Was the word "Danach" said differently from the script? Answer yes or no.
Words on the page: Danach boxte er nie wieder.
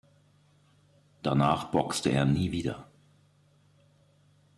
no